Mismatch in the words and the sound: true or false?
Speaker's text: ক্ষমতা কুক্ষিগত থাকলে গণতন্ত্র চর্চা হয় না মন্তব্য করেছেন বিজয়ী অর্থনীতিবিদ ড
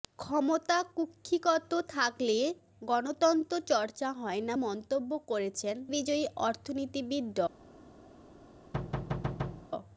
true